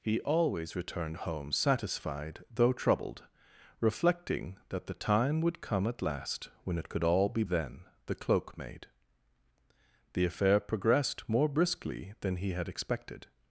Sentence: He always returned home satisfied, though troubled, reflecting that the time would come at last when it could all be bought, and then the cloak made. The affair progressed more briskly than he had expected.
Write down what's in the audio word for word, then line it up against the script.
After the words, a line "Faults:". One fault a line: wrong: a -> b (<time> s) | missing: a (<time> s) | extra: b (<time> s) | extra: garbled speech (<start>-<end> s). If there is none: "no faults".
He always returned home satisfied, though troubled, reflecting that the time would come at last when it could all be then the cloak made. The affair progressed more briskly than he had expected.
Faults:
missing: bought and (7.4 s)